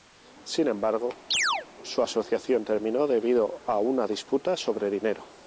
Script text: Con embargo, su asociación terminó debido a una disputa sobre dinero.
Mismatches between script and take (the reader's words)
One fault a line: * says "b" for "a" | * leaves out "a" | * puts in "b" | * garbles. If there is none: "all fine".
* says "Sin" for "Con"